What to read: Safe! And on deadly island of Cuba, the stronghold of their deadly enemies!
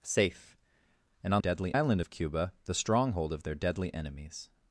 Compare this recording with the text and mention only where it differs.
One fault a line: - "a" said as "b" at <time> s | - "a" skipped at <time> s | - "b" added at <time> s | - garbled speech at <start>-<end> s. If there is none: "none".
none